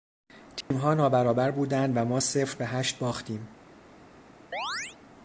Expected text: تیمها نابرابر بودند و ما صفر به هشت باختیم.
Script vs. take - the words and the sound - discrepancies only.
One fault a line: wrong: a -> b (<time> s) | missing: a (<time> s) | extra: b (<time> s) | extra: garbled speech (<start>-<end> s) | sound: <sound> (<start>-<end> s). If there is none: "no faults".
sound: dropout (0.6-0.7 s)
sound: chirp (4.5-5.0 s)